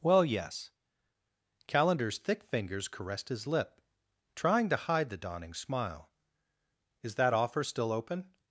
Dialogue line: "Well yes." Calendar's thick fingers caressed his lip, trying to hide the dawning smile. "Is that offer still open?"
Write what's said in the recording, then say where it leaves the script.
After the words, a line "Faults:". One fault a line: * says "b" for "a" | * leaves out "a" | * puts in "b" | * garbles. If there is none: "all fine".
"Well yes." Calendar's thick fingers caressed his lip, trying to hide the dawning smile. "Is that offer still open?"
Faults:
all fine